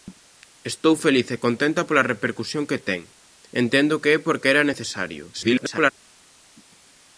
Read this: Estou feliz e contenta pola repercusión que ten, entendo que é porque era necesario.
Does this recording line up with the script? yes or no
no